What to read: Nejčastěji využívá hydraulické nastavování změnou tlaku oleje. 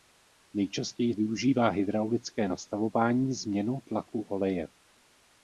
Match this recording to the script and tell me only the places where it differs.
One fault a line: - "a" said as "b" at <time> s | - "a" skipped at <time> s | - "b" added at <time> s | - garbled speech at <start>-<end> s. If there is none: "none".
none